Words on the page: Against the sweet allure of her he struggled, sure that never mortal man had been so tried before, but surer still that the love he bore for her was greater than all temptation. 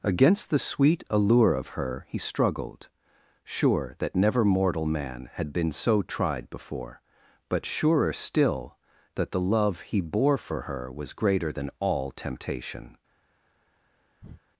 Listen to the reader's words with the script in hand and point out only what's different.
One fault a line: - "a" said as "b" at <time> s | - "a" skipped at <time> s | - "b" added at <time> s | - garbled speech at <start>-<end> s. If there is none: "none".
none